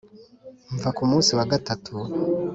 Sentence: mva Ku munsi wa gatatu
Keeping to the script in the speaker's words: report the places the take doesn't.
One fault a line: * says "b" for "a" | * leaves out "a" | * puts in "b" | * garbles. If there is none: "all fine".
all fine